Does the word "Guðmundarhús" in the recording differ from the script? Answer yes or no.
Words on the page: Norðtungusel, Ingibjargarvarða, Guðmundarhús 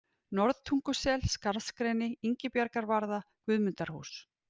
no